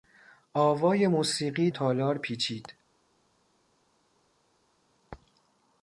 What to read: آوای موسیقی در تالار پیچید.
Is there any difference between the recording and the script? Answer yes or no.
yes